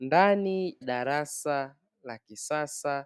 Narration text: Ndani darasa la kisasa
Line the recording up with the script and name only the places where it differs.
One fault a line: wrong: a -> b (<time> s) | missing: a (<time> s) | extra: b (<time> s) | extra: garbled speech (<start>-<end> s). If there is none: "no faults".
no faults